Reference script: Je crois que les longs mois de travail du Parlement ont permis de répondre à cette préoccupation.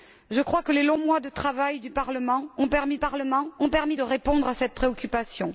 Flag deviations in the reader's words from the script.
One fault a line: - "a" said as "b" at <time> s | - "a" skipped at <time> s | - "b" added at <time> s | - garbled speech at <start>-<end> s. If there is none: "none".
- "Parlement ont permis" added at 3.0 s